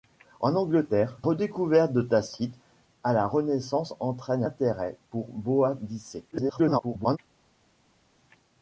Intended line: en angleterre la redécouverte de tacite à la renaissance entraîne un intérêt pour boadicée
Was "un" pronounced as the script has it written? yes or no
no